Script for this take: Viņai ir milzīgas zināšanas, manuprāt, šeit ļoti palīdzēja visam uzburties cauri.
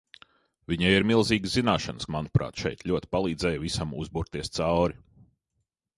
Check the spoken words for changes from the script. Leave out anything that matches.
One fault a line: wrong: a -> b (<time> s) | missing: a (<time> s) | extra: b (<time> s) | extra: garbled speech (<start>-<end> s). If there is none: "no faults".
no faults